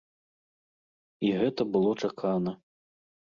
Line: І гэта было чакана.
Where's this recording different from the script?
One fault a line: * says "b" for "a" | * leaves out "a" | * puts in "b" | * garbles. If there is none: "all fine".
all fine